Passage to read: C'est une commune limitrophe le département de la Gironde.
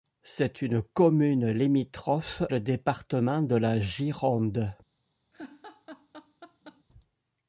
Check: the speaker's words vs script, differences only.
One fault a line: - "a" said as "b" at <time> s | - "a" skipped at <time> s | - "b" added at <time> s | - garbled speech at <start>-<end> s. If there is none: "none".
none